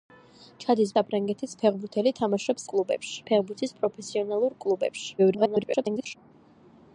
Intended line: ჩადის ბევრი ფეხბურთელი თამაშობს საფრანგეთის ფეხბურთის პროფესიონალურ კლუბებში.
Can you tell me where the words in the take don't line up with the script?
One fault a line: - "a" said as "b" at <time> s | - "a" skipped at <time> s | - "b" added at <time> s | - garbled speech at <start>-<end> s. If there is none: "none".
- "ბევრი" said as "საფრანგეთის" at 1.0 s
- "საფრანგეთის" said as "კლუბებში" at 2.7 s
- garbled speech at 5.2-6.2 s